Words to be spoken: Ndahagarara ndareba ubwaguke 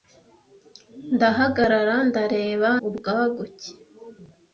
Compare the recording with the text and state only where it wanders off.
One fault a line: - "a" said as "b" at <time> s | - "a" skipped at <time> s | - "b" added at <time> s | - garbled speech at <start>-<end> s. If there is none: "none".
none